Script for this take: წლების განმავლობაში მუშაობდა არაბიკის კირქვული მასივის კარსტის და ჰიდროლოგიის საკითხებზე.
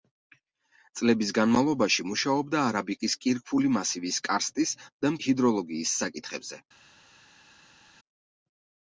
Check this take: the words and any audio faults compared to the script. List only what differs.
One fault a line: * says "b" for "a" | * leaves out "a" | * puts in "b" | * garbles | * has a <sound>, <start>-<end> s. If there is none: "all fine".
all fine